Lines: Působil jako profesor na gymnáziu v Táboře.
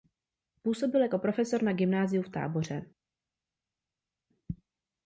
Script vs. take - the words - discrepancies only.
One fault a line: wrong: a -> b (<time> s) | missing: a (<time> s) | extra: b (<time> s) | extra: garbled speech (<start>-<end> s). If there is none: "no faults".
no faults